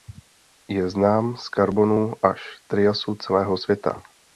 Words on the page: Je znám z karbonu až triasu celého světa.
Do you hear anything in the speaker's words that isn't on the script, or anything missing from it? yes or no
no